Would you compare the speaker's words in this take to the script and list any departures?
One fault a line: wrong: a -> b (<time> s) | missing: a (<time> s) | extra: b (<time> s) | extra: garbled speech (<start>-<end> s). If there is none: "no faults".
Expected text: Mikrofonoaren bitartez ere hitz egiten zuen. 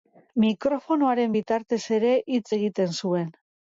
no faults